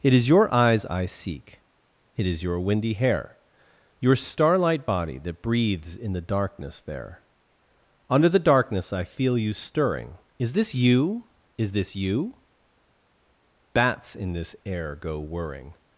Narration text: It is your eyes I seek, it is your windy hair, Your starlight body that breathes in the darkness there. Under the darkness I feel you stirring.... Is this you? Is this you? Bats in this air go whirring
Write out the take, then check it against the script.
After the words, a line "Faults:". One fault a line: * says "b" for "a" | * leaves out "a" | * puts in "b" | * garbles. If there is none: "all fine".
It is your eyes I seek, it is your windy hair, Your starlight body that breathes in the darkness there. Under the darkness I feel you stirring.... Is this you? Is this you? Bats in this air go whirring
Faults:
all fine